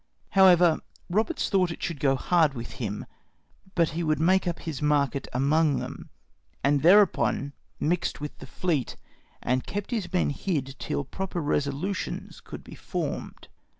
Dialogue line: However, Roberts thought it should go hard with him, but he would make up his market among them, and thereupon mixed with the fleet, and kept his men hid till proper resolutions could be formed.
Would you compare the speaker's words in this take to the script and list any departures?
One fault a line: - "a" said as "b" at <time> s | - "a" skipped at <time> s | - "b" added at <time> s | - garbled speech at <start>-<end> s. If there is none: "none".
none